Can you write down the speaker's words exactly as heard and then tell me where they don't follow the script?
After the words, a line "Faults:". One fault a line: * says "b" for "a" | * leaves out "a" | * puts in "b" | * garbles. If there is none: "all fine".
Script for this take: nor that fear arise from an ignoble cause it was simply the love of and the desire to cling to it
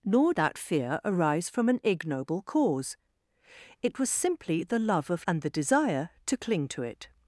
nor that fear arise from an ignoble cause it was simply the love of and the desire to cling to it
Faults:
all fine